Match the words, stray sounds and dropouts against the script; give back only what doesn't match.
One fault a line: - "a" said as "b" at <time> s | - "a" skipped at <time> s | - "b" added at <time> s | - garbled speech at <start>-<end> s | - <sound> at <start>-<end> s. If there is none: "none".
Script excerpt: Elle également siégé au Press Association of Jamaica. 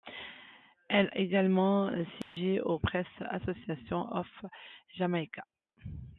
- dropout at 2.2-2.4 s